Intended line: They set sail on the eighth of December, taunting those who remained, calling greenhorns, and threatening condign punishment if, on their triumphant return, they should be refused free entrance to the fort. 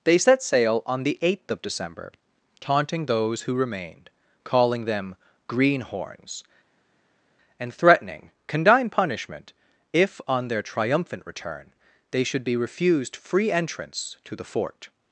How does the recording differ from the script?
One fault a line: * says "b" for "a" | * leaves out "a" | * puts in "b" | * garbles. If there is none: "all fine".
* puts in "them"